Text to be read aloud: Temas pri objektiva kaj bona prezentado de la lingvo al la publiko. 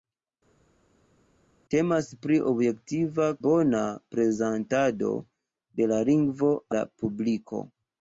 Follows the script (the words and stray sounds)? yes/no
no